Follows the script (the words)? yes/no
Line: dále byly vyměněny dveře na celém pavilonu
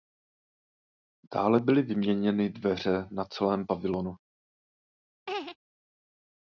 yes